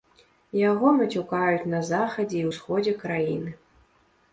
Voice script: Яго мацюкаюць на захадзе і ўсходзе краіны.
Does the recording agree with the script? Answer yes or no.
yes